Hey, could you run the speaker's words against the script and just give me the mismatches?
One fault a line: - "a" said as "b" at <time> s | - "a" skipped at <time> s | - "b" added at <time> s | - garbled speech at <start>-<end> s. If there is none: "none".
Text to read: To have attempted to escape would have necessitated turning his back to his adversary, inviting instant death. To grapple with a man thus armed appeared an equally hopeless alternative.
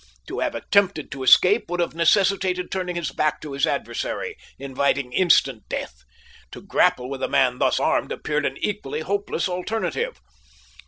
none